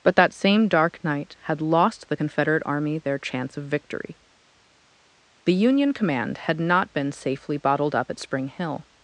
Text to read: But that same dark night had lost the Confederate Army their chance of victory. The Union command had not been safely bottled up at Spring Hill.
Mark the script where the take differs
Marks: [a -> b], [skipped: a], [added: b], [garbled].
But that same dark night had lost the Confederate Army their chance of victory. The Union command had not been safely bottled up at Spring Hill.